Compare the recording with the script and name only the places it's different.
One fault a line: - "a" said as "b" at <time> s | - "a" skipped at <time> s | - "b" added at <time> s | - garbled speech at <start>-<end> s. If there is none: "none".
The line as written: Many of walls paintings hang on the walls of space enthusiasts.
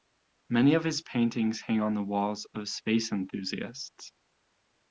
- "walls" said as "his" at 0.8 s